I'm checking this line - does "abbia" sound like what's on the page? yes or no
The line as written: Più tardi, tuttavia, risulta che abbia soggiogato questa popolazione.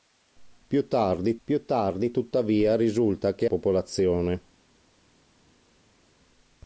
no